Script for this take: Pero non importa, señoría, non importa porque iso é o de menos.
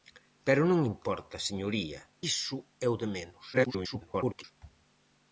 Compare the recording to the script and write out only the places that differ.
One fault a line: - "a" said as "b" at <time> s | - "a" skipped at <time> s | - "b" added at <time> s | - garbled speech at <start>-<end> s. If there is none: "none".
- "non importa porque" skipped at 2.0 s
- garbled speech at 3.5-4.4 s